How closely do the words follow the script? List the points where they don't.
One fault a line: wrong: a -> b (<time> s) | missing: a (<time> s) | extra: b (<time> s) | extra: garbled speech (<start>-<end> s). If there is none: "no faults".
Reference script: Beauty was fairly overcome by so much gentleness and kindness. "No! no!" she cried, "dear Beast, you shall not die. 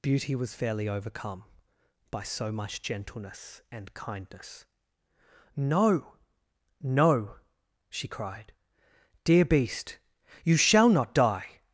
no faults